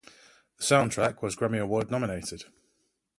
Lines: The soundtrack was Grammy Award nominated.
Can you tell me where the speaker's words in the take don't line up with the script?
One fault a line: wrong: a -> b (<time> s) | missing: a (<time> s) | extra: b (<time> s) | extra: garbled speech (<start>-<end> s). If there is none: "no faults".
no faults